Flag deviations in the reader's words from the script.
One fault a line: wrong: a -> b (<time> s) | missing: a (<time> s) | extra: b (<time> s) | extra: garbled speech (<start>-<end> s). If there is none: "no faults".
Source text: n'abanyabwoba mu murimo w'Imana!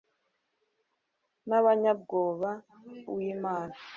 missing: mu murimo (2.5 s)